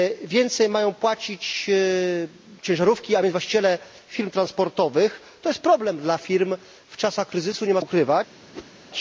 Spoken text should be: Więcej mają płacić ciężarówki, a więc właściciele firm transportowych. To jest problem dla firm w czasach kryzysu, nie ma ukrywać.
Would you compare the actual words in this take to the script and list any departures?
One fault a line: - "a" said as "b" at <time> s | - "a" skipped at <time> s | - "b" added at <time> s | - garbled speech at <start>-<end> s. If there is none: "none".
none